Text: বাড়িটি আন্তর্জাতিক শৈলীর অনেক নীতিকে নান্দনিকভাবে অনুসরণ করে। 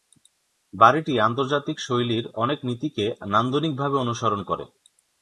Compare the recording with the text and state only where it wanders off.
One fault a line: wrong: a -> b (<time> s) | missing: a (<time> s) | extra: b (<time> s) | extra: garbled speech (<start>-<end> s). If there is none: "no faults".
no faults